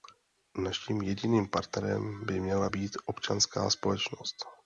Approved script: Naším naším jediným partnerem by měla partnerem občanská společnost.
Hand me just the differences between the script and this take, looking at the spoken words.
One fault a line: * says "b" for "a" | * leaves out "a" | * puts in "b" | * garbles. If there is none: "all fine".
* leaves out "naším"
* says "být" for "partnerem"